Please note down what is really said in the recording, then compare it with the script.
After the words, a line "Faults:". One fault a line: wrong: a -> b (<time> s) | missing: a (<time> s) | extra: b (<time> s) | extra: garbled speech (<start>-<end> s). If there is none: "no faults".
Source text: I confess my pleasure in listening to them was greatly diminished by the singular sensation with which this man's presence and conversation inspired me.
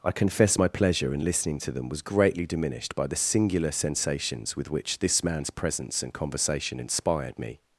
I confess my pleasure in listening to them was greatly diminished by the singular sensations with which this man's presence and conversation inspired me.
Faults:
wrong: sensation -> sensations (3.7 s)